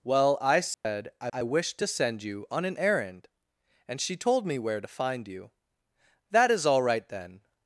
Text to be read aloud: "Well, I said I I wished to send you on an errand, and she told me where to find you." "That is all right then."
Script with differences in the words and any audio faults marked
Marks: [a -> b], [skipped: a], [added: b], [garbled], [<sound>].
"Well, I said [dropout] I I wished to send you on an errand, and she told me where to find you." "That is all right then."